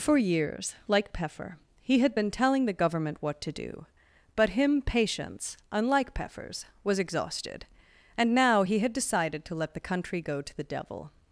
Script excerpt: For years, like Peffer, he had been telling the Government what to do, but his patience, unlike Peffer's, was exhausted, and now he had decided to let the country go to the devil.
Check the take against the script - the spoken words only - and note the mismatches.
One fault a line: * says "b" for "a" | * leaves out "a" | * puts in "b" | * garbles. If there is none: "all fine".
* says "him" for "his"